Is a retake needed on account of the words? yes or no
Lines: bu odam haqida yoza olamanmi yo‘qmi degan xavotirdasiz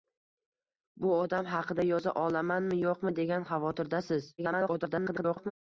yes